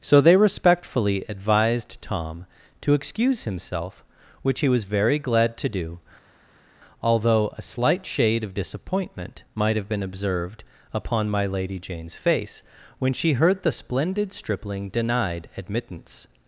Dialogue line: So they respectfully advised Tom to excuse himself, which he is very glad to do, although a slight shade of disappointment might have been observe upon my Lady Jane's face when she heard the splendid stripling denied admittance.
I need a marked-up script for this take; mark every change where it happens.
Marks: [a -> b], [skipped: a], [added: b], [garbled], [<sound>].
So they respectfully advised Tom to excuse himself, which he [is -> was] very glad to do, although a slight shade of disappointment might have been [observe -> observed] upon my Lady Jane's face when she heard the splendid stripling denied admittance.